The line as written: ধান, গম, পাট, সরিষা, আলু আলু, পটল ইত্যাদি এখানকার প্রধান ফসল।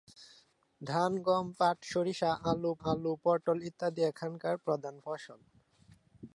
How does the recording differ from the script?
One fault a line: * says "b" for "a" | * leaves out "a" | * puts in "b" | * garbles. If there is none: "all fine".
all fine